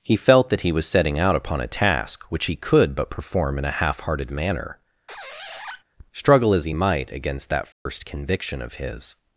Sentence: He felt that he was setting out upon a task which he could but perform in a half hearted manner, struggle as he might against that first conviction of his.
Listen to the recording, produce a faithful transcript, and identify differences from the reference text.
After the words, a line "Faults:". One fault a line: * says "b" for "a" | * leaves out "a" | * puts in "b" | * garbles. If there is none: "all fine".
He felt that he was setting out upon a task which he could but perform in a half hearted manner, struggle as he might against that first conviction of his.
Faults:
all fine